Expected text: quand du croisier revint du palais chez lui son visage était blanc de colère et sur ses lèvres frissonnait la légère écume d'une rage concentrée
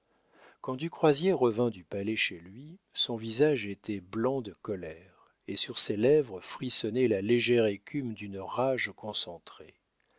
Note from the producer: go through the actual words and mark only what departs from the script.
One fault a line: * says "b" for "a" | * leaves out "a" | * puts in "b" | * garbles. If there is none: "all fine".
all fine